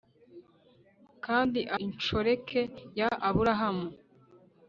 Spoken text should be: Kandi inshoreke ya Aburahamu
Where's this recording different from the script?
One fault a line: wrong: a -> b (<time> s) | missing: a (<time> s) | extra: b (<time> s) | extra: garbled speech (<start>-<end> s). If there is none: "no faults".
no faults